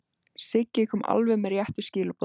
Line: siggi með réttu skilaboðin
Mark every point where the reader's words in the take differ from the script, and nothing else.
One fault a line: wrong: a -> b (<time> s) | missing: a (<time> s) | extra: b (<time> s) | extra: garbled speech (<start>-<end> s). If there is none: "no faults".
extra: kom alveg (0.9 s)